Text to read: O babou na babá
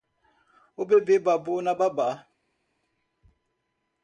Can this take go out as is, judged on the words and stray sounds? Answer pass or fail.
fail